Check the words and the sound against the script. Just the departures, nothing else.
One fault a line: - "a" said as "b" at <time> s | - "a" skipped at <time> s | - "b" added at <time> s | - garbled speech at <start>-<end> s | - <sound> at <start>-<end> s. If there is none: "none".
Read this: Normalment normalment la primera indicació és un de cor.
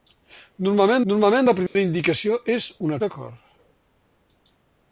- dropout at 1.7-1.8 s